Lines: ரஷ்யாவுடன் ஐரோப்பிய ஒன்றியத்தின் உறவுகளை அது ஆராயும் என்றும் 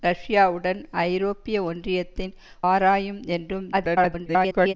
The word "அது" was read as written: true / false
false